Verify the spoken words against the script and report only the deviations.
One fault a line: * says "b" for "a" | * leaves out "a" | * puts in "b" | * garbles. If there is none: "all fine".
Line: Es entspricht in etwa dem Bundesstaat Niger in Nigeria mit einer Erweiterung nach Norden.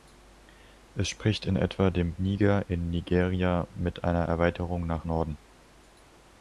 * leaves out "Bundesstaat"